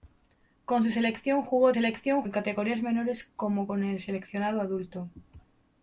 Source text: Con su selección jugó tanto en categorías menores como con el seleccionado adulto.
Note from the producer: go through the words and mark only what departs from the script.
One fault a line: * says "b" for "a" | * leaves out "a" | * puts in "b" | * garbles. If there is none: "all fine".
* says "selección" for "tanto"